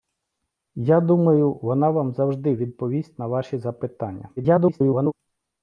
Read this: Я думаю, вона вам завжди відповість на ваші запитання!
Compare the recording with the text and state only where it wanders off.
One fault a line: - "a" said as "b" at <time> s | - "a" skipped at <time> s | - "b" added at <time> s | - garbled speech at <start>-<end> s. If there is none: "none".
- garbled speech at 4.4-5.1 s